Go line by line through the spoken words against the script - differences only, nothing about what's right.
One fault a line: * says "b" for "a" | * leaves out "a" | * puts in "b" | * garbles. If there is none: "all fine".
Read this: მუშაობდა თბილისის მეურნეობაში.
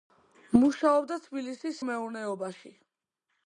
all fine